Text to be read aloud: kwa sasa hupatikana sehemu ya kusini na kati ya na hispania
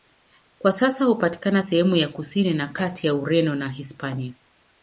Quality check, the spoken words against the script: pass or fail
fail